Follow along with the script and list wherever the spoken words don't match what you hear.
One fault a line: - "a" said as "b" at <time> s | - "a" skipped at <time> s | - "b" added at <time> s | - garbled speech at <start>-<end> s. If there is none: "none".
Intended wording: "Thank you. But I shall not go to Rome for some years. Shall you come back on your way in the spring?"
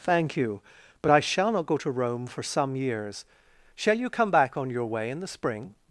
none